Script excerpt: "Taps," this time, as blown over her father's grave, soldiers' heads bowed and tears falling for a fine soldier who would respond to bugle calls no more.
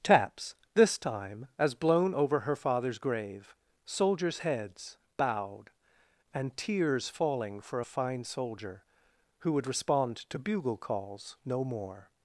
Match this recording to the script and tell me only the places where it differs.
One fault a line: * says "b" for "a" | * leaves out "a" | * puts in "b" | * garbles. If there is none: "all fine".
all fine